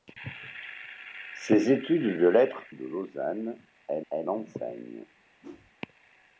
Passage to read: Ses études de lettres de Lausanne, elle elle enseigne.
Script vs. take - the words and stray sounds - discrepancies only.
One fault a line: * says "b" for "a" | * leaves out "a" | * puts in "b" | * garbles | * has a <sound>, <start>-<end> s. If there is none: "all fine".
* has a whoosh, 5.4-5.7 s